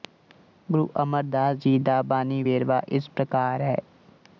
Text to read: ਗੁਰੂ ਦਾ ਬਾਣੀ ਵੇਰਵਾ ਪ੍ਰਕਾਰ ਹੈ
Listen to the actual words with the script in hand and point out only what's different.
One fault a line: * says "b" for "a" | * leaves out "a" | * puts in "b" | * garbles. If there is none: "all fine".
* puts in "ਅਮਰਦਾਸ ਜੀ"
* puts in "ਇਸ"